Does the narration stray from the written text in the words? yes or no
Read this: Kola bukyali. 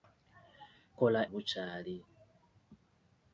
no